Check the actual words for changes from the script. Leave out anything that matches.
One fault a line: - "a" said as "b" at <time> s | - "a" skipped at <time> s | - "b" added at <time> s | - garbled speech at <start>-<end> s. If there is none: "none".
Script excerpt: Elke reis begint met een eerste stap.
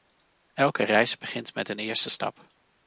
none